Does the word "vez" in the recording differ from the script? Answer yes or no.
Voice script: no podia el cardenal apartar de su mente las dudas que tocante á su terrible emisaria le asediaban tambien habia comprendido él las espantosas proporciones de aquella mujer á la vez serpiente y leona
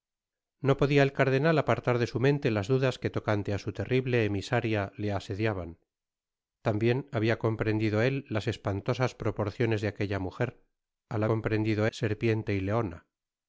yes